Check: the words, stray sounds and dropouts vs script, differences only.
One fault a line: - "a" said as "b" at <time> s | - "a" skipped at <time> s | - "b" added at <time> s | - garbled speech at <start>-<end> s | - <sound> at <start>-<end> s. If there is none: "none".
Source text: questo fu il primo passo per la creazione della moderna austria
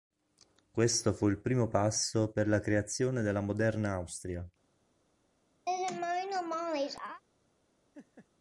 - laugh at 5.7-7.2 s
- laugh at 7.9-8.3 s